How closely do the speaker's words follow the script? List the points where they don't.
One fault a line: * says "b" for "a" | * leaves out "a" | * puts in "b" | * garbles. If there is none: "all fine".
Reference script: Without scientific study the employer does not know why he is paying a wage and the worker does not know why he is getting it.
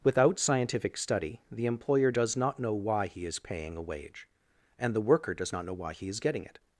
all fine